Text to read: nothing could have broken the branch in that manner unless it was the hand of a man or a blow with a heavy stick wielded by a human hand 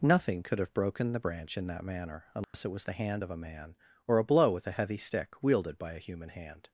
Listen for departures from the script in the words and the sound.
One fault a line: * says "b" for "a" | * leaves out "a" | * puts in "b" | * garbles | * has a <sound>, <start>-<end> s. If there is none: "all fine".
* has a dropout, 2.4-2.5 s